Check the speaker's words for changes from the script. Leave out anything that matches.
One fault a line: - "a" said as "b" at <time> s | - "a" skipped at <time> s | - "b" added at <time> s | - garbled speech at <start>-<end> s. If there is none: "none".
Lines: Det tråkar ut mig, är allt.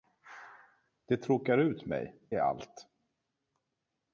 none